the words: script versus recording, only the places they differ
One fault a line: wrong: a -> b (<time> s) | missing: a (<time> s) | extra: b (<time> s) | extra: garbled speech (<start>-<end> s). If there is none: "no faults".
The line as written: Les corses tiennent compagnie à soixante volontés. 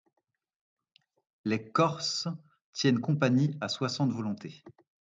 no faults